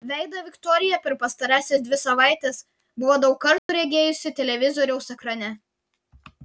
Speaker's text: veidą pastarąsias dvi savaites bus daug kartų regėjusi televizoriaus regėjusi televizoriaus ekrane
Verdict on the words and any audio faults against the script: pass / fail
fail